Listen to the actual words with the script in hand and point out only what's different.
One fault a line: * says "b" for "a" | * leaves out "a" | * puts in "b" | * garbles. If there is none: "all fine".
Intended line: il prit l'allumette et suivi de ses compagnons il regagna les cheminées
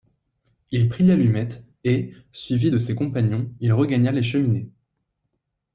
all fine